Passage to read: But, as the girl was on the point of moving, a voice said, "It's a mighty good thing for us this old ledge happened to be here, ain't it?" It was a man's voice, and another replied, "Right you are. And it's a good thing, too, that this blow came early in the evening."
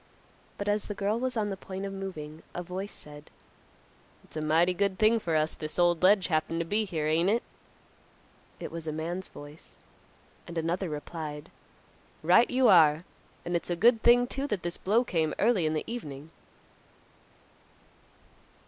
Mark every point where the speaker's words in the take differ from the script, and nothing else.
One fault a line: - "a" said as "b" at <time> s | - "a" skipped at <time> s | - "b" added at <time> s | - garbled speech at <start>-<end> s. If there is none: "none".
none